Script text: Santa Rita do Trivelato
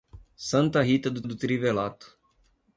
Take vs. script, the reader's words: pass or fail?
fail